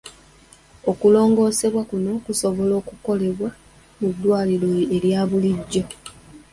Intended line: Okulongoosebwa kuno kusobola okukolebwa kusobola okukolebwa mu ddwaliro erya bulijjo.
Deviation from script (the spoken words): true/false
true